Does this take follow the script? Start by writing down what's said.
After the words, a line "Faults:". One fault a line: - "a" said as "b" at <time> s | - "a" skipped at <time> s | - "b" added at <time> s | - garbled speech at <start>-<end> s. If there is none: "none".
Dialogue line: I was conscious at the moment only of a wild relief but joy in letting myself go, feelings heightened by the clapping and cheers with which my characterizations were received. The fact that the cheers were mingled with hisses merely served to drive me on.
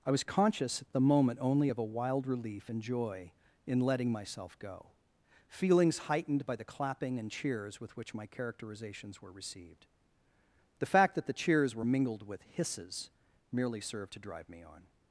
I was conscious at the moment only of a wild relief and joy in letting myself go, feelings heightened by the clapping and cheers with which my characterizations were received. The fact that the cheers were mingled with hisses merely served to drive me on.
Faults:
- "but" said as "and" at 2.7 s